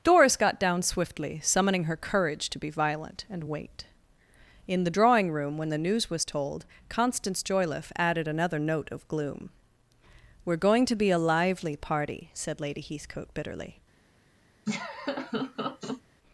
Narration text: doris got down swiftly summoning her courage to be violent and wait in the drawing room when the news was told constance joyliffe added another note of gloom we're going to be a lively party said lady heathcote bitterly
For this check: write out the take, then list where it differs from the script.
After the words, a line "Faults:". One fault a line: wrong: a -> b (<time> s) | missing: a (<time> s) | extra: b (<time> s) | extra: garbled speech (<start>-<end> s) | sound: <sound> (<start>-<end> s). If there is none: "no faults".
doris got down swiftly summoning her courage to be violent and wait in the drawing room when the news was told constance joyliffe added another note of gloom we're going to be a lively party said lady heathcote bitterly
Faults:
sound: laugh (14.7-16.0 s)